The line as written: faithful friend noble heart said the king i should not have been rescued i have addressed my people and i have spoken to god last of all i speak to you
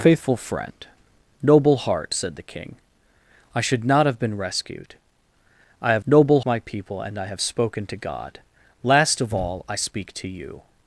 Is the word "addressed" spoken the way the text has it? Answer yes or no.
no